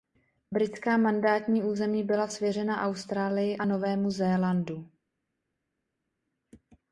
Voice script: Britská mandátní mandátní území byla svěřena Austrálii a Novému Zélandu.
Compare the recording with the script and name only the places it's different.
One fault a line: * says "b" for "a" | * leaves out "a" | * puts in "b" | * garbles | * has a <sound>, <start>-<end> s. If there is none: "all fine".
* leaves out "mandátní"